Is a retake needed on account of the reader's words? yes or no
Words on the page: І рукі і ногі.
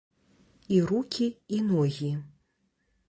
no